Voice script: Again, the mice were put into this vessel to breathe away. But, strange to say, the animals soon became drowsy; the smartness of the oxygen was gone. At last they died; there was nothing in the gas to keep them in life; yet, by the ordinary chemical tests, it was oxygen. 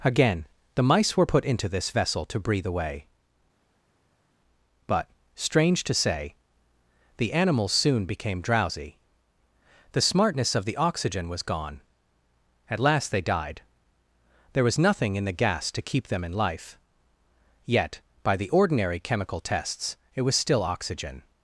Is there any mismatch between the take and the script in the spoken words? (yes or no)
yes